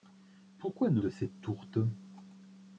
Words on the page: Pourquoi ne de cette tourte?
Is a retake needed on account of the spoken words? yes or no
no